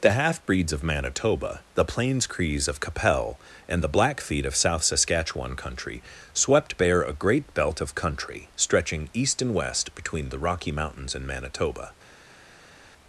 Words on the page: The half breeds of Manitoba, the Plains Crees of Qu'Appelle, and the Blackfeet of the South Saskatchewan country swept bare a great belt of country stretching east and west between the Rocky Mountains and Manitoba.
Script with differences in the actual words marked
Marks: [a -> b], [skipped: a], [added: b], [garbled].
The half breeds of Manitoba, the Plains Crees of Qu'Appelle, and the Blackfeet of [skipped: the] South Saskatchewan country swept bare a great belt of country stretching east and west between the Rocky Mountains and Manitoba.